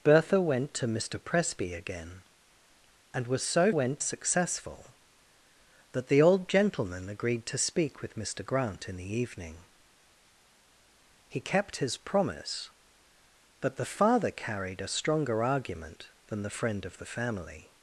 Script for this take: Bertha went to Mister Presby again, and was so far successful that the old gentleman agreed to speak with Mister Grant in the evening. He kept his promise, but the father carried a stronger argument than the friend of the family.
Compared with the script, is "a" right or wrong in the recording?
right